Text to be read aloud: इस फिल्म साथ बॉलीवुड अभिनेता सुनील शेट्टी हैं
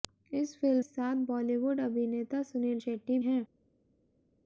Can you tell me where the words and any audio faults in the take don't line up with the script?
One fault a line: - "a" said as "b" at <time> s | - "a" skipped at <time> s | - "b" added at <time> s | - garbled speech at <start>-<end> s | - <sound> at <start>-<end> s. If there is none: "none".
none